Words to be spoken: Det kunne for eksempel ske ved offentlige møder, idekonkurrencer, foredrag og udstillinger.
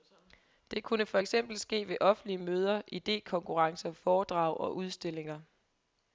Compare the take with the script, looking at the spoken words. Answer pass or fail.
pass